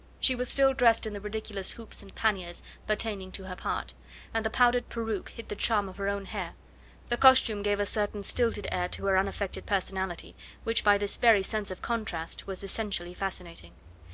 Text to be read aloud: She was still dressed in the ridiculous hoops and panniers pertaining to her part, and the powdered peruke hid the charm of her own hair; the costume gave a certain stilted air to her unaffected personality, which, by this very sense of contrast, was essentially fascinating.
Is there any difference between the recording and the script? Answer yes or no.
no